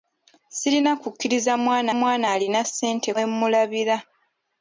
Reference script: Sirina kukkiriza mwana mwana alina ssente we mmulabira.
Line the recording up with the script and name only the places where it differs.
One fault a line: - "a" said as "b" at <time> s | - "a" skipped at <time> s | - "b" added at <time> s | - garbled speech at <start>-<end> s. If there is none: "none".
none